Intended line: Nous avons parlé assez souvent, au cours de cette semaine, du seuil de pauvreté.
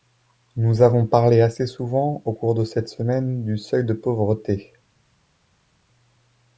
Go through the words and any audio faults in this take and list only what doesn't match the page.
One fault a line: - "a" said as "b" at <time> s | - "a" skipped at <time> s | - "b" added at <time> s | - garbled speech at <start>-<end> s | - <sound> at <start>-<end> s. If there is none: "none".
none